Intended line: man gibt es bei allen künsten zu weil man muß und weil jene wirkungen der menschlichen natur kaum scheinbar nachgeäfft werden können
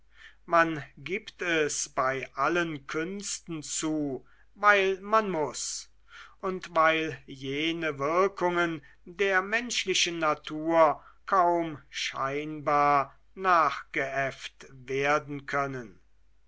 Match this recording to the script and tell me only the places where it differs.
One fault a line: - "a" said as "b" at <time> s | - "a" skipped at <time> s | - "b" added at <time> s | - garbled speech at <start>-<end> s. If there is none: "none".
none